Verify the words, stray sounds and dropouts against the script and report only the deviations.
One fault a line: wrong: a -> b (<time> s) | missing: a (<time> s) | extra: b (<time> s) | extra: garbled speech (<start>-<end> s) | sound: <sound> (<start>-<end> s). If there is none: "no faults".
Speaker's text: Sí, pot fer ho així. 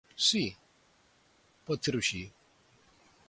no faults